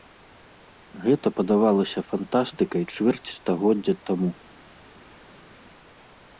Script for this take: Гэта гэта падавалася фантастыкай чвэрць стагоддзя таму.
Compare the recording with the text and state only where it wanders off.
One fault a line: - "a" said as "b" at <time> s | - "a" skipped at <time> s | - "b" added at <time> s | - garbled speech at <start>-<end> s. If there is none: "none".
- "гэта" skipped at 1.3 s